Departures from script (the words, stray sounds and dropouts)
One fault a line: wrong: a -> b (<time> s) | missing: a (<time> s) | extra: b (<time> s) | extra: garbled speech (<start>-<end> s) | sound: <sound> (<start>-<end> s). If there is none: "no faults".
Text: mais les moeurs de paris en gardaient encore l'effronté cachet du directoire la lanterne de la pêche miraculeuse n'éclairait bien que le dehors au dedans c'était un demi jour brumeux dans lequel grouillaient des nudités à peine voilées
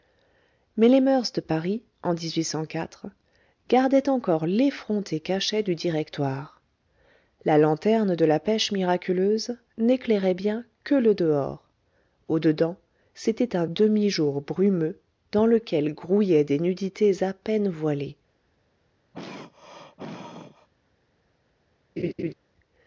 sound: throat clearing (19.1-20.7 s)
sound: laugh (22.0-22.3 s)